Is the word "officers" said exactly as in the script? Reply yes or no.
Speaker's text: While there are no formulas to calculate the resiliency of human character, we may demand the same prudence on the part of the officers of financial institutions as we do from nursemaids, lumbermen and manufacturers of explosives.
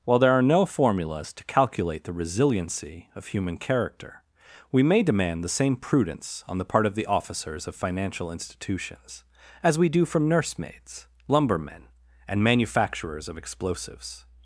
yes